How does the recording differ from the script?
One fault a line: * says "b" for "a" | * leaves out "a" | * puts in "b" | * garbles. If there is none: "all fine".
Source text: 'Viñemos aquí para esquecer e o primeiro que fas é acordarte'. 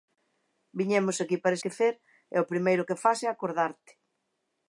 all fine